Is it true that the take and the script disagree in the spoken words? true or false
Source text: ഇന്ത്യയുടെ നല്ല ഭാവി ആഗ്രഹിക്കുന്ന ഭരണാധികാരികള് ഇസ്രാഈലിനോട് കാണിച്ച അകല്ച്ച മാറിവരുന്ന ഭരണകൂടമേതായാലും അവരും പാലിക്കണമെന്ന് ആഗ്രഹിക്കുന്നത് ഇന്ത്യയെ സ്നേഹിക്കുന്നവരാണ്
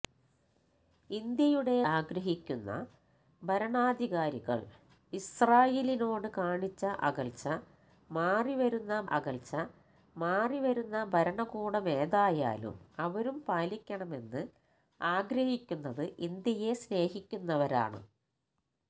true